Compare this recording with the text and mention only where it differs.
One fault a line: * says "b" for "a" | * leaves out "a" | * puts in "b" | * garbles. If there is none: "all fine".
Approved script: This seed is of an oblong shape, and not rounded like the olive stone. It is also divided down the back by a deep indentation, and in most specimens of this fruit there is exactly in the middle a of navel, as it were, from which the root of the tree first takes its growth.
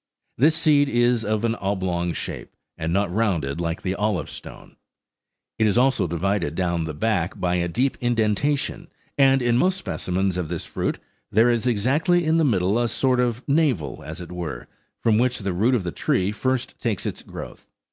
* puts in "sort"